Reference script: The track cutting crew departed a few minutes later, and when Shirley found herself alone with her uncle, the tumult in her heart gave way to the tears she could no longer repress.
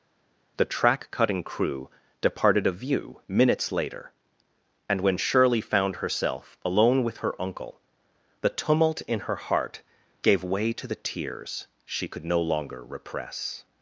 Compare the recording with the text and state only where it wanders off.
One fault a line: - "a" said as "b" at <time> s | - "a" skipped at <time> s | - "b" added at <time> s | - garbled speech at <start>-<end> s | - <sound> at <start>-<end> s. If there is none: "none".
- "few" said as "view" at 2.7 s